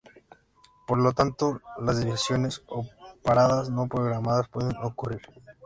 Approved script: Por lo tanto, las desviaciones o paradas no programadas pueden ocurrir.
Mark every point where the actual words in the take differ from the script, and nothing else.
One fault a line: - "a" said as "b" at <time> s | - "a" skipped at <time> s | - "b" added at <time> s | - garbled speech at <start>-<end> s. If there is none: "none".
none